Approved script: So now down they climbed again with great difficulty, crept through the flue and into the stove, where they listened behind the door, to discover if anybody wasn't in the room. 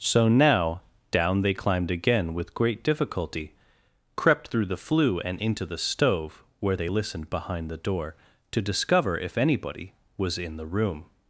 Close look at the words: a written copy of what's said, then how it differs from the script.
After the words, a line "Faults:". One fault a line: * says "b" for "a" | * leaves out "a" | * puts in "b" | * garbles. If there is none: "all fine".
So now down they climbed again with great difficulty, crept through the flue and into the stove, where they listened behind the door, to discover if anybody was in the room.
Faults:
* says "was" for "wasn't"